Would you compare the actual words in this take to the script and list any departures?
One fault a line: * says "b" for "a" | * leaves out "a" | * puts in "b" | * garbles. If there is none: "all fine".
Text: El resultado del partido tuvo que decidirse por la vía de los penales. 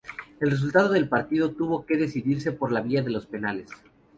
all fine